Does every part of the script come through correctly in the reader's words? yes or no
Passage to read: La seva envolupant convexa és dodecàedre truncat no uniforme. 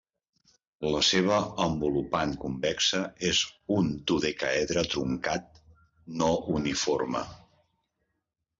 no